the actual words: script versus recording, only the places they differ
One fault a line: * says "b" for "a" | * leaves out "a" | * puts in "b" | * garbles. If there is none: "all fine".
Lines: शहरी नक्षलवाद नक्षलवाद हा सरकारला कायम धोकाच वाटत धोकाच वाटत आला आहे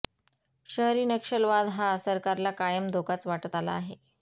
* leaves out "नक्षलवाद"
* leaves out "धोकाच वाटत"